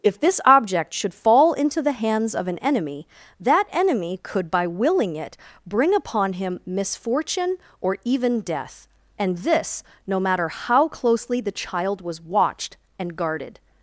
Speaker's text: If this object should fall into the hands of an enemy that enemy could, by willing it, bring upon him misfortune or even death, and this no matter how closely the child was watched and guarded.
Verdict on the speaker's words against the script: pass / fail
pass